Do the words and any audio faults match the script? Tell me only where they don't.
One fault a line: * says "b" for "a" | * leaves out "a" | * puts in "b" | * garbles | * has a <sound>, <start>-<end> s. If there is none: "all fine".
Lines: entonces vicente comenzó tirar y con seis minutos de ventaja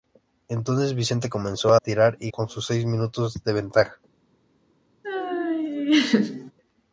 * has a laugh, 5.0-6.5 s